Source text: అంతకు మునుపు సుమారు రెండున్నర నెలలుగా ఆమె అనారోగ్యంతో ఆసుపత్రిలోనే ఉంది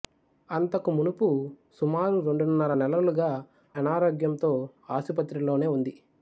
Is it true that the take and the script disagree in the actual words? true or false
true